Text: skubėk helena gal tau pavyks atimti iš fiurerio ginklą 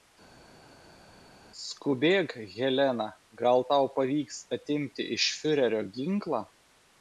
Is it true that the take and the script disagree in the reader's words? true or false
false